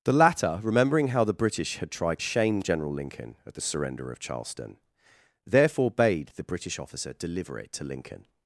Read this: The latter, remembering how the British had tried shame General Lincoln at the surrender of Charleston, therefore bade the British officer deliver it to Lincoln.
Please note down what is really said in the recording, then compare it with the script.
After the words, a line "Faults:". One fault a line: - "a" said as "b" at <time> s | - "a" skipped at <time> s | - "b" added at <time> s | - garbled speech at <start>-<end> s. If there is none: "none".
The latter, remembering how the British had tried shame General Lincoln at the surrender of Charleston, therefore bade the British officer deliver it to Lincoln.
Faults:
none